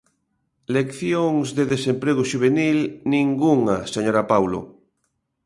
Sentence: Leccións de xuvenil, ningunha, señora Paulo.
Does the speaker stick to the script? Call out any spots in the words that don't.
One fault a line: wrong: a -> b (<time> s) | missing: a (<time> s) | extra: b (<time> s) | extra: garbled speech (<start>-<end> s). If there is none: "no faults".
extra: desemprego (1.7 s)